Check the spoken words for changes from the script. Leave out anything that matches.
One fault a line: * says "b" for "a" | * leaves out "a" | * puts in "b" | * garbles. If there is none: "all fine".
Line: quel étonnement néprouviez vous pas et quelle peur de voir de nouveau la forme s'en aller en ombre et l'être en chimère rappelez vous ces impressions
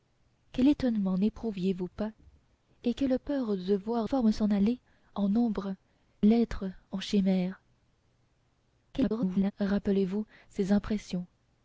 * leaves out "de nouveau la"
* leaves out "et"
* garbles